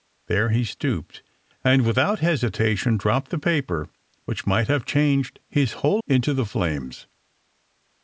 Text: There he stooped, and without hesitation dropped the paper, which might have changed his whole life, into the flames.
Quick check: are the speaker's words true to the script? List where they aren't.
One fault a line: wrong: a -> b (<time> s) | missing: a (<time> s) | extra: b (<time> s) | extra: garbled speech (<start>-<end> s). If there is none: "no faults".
missing: life (6.0 s)